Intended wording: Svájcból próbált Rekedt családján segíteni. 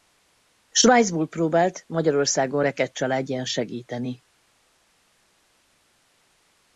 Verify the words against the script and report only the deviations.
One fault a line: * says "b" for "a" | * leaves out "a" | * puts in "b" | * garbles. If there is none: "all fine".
* puts in "Magyarországon"